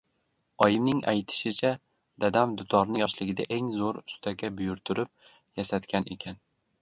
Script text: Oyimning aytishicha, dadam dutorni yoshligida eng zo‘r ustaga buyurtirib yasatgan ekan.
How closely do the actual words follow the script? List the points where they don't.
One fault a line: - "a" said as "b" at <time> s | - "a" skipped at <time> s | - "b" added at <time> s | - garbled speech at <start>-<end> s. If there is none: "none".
none